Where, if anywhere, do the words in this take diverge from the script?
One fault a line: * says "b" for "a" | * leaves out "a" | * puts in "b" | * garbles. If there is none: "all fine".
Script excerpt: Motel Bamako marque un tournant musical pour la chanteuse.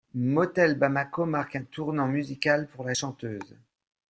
all fine